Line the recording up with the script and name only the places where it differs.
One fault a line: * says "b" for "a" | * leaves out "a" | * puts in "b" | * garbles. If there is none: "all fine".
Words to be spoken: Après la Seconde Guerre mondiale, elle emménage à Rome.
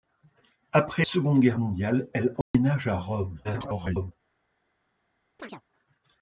* leaves out "la"
* garbles